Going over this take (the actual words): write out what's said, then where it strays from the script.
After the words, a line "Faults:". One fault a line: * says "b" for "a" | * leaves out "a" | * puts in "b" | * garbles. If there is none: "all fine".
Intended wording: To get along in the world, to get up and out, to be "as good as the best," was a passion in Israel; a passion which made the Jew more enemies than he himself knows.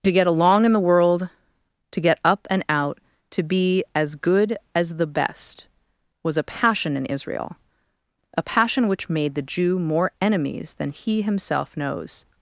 To get along in the world, to get up and out, to be "as good as the best," was a passion in Israel; a passion which made the Jew more enemies than he himself knows.
Faults:
all fine